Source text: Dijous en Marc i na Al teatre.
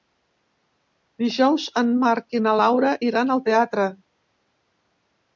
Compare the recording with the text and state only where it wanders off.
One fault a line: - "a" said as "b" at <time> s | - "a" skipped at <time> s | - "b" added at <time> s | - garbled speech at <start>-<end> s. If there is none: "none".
- "Laura iran" added at 2.6 s